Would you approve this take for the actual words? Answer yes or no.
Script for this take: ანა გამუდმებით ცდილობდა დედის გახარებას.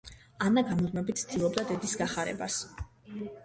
yes